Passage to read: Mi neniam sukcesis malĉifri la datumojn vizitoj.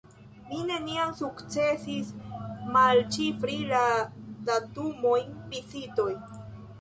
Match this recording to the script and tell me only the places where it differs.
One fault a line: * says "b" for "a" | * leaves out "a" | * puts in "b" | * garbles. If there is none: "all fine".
all fine